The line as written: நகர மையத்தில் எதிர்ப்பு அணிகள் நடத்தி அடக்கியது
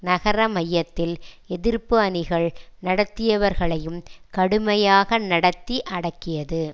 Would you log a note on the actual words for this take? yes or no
yes